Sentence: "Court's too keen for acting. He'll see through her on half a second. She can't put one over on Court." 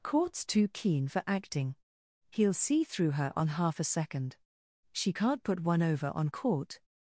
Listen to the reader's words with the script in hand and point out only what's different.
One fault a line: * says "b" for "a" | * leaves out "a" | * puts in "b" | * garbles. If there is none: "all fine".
all fine